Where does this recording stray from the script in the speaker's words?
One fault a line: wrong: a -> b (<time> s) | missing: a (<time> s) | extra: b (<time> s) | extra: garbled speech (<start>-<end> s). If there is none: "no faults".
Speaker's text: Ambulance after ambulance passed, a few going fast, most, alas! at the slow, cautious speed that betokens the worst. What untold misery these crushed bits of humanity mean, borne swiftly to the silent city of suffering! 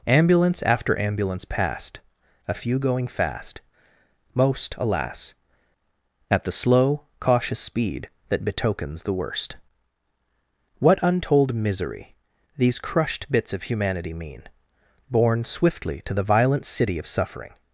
wrong: silent -> violent (16.2 s)